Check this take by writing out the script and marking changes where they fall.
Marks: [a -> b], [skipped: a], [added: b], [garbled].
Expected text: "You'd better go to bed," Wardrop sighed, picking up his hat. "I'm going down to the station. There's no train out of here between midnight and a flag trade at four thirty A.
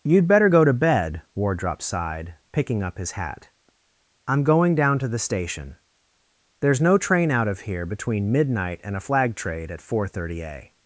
"You'd better go to bed," Wardrop sighed, picking up his hat. "I'm going down to the station. There's no train out of here between midnight and a flag trade at four thirty A.